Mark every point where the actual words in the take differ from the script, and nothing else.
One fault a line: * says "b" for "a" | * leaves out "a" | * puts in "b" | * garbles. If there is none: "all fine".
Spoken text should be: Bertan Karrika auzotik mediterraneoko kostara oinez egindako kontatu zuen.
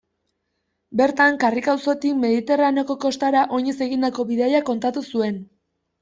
* puts in "bidaia"